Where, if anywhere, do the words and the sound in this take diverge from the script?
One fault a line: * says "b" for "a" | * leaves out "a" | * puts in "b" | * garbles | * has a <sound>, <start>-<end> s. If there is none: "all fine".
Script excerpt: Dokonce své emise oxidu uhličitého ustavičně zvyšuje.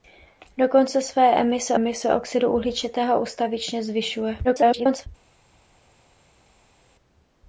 * puts in "emise"
* garbles